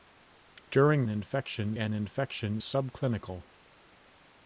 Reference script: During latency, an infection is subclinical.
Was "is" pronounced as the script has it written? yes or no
no